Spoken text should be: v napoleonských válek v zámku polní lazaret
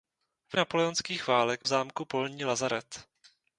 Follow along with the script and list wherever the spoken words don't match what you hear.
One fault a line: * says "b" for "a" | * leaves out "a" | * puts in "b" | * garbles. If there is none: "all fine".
all fine